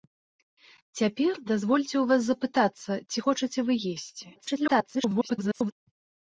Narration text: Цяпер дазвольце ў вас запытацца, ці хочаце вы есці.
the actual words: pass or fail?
fail